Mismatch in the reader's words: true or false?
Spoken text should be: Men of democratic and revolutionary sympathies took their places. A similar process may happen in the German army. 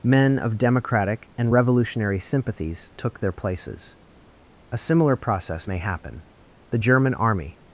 true